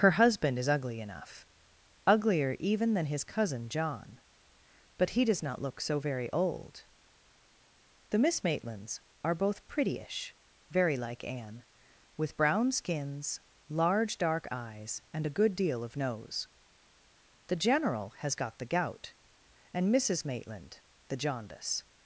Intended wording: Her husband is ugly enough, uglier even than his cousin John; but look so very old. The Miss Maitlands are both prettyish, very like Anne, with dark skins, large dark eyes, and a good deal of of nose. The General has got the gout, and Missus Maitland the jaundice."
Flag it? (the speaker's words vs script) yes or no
yes